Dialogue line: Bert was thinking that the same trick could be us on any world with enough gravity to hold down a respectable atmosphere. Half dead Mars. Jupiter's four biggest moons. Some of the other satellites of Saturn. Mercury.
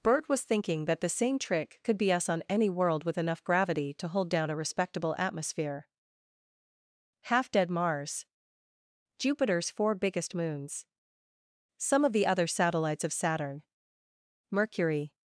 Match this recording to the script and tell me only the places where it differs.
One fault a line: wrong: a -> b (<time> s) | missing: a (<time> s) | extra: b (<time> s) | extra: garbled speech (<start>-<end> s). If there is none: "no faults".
no faults